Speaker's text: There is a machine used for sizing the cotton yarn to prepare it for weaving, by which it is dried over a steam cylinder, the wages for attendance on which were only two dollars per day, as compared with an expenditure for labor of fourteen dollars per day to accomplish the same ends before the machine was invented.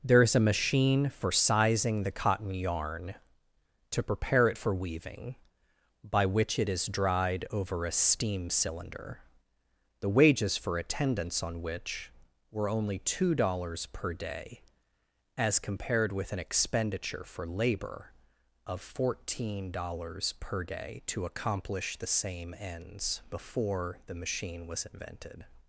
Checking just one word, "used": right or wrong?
wrong